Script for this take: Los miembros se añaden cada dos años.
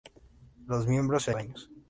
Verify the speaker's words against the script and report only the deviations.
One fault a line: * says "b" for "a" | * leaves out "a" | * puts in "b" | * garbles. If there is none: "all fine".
* leaves out "añaden cada dos"